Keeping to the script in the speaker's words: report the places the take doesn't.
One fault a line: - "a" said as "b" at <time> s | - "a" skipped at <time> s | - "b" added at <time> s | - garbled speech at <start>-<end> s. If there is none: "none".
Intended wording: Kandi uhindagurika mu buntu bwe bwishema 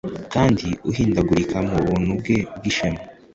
none